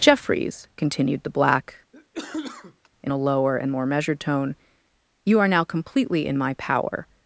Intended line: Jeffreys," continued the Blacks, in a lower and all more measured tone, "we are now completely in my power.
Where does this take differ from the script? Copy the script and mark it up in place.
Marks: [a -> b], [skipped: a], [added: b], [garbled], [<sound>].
Jeffreys," continued the [Blacks, -> Black] [cough] in a lower and [skipped: all] more measured tone, ["we -> you] are now completely in my power.